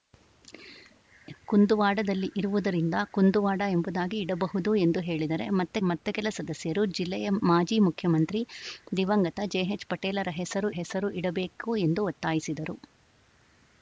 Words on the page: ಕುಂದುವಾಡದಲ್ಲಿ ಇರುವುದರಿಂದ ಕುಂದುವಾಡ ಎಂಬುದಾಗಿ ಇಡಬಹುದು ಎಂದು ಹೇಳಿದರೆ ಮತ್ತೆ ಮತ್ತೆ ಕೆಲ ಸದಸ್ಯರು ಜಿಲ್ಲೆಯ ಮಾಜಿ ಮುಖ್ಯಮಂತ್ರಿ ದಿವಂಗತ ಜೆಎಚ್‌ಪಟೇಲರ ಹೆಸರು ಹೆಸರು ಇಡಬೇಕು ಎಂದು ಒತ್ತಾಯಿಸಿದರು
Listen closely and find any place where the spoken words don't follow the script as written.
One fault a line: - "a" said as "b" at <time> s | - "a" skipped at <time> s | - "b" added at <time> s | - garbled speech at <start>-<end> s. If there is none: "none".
none